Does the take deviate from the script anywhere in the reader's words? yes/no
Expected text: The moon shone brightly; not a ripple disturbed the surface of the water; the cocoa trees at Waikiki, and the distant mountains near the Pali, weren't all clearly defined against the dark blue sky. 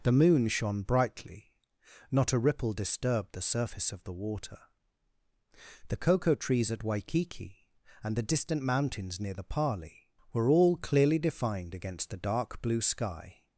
yes